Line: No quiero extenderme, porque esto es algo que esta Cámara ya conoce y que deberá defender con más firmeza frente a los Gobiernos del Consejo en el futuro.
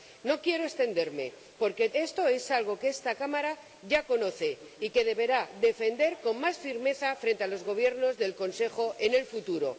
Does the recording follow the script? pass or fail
pass